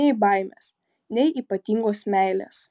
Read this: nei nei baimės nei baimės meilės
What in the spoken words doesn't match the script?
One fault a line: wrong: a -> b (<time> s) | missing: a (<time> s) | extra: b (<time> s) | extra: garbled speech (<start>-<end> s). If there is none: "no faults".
missing: nei (0.1 s)
wrong: baimės -> ypatingos (1.4 s)